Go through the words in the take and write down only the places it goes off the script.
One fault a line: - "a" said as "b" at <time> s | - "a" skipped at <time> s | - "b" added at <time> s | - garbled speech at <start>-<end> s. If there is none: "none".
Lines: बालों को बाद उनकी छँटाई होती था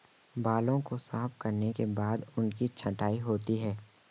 - "साफ करने के" added at 1.0 s
- "था" said as "है" at 3.6 s